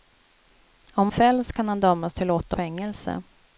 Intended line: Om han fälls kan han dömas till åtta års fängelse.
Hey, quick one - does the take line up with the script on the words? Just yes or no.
no